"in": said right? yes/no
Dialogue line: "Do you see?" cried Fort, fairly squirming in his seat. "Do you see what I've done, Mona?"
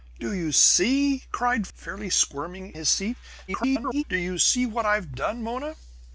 no